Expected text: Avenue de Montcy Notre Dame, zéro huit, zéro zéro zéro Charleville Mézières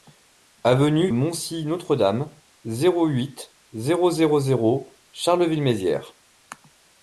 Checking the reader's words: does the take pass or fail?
fail